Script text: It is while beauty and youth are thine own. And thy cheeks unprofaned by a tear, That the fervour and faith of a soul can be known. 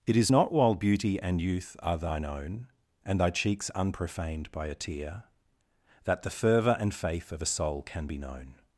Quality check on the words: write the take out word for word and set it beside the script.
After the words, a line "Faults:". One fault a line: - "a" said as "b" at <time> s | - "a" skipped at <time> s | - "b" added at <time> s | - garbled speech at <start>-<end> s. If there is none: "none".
It is not while beauty and youth are thine own. And thy cheeks unprofaned by a tear, That the fervour and faith of a soul can be known.
Faults:
- "not" added at 0.3 s